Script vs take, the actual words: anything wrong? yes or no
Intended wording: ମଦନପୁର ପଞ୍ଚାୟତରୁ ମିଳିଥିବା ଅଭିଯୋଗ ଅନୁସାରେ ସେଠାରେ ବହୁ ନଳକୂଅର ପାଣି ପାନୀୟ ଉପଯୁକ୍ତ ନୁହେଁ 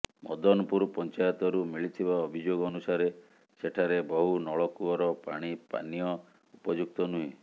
no